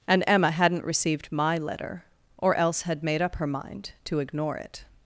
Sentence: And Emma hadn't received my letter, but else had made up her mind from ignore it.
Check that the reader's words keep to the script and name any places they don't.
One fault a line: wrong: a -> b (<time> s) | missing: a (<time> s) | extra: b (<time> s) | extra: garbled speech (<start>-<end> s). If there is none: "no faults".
wrong: but -> or (2.4 s)
wrong: from -> to (4.0 s)